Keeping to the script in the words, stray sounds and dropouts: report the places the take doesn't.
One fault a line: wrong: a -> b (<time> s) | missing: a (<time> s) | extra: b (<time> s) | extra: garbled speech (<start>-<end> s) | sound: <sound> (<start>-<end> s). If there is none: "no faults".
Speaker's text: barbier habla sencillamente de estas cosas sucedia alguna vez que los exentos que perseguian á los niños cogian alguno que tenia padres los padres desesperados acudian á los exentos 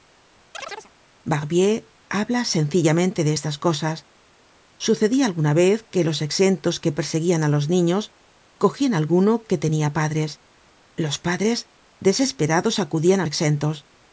sound: chirp (0.5-0.9 s)
missing: los (13.3 s)